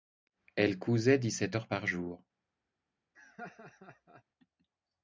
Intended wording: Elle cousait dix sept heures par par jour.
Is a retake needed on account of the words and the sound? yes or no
yes